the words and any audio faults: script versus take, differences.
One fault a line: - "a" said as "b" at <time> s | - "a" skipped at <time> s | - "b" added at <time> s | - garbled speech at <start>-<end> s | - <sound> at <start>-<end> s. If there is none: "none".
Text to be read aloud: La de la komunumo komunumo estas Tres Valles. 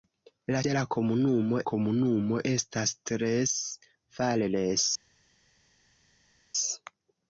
none